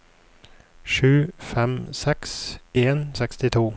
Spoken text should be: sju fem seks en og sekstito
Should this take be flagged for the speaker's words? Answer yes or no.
no